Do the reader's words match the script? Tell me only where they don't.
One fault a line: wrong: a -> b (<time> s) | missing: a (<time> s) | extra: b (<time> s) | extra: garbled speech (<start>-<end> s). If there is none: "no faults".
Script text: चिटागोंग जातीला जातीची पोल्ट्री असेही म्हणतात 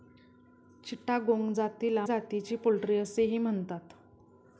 no faults